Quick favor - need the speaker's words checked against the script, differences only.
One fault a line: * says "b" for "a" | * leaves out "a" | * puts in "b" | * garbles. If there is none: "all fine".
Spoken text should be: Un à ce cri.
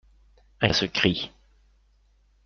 all fine